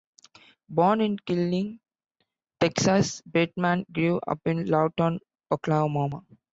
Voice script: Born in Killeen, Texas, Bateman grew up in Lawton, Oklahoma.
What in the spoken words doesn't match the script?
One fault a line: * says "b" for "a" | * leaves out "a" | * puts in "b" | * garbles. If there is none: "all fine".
all fine